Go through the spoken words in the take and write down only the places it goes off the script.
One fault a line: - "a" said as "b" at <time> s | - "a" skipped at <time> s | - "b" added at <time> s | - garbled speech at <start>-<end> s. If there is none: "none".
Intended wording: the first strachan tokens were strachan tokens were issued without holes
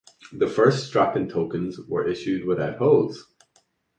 - "strachan tokens were" skipped at 2.1 s